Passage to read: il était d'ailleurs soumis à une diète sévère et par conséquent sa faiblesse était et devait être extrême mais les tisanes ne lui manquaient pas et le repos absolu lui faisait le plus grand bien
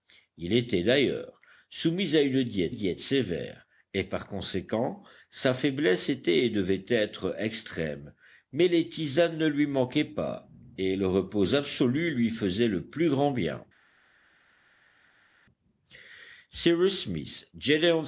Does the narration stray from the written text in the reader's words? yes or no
yes